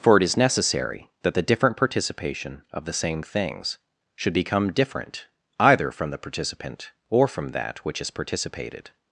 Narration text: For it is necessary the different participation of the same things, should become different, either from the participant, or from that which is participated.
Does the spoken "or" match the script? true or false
true